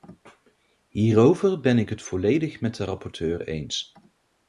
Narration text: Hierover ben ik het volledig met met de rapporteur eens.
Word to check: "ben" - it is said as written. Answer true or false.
true